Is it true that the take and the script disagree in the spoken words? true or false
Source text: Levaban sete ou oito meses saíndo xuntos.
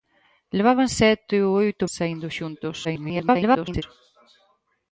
true